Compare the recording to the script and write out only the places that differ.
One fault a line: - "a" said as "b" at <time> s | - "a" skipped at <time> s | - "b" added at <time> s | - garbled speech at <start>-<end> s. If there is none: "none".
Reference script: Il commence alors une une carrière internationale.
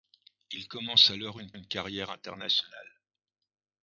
none